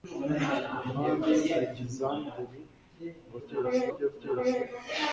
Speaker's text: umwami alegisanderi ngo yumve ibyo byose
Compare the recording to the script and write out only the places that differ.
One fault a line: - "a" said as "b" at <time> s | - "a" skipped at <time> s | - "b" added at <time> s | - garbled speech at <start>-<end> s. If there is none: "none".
- "yumve" said as "byose" at 3.4 s